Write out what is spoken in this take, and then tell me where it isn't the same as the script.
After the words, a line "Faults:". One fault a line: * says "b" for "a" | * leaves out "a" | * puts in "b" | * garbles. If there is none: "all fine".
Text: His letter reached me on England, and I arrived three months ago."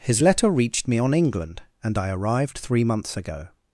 His letter reached me on England, and I arrived three months ago."
Faults:
all fine